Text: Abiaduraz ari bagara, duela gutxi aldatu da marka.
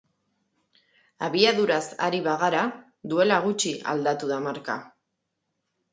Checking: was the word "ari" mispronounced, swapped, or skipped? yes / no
no